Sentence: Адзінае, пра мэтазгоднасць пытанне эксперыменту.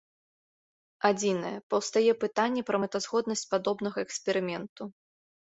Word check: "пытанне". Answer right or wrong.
wrong